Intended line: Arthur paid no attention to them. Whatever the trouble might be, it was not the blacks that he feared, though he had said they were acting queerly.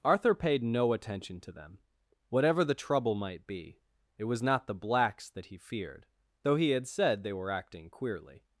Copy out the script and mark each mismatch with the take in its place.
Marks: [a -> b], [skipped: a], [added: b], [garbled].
Arthur paid no attention to them. Whatever the trouble might be, it was not the blacks that he feared, though he had said they were acting queerly.